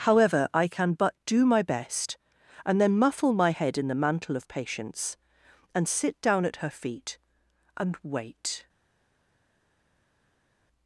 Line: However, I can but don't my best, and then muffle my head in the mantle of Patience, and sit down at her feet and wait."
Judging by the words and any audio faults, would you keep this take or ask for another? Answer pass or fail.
fail